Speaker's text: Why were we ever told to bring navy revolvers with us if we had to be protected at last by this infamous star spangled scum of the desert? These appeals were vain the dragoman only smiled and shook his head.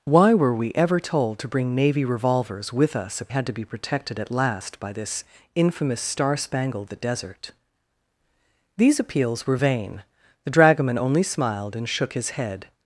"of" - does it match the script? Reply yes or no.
no